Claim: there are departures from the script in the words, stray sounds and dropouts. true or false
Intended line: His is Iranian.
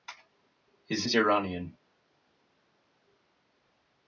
false